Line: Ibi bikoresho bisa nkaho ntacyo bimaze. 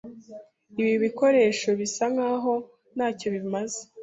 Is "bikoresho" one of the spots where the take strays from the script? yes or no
no